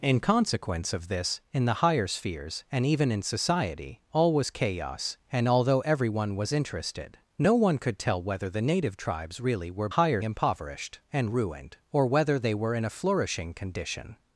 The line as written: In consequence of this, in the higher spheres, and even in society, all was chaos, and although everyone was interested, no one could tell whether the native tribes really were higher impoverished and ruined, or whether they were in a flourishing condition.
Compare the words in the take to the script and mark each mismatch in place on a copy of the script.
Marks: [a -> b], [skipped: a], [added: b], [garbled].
In consequence of this, in the higher spheres, and even in society, all was chaos, and although everyone was interested, no one could tell whether the native tribes really were higher impoverished and ruined, or whether they were in a flourishing condition.